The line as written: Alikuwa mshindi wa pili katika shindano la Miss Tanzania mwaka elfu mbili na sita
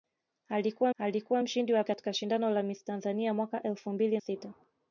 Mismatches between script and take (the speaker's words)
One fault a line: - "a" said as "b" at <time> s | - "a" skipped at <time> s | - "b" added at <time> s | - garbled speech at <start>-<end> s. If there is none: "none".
- "alikuwa" added at 1.0 s
- "pili" skipped at 1.8 s
- "na" skipped at 4.2 s